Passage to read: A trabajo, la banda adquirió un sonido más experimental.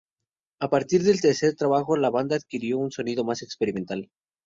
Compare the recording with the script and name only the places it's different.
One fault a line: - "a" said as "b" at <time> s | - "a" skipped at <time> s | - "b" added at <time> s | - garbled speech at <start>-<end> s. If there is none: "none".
- "partir del tercer" added at 0.7 s